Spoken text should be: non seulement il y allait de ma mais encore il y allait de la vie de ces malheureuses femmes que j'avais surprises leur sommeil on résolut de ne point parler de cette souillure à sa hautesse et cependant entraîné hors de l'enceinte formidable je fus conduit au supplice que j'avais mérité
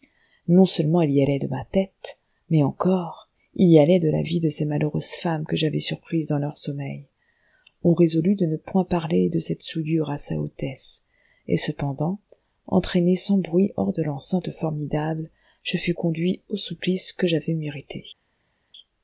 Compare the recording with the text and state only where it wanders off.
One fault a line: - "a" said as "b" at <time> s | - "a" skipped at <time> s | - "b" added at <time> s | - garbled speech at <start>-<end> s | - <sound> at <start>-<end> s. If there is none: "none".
- "tête" added at 1.6 s
- "dans" added at 6.3 s
- "sans bruit" added at 13.2 s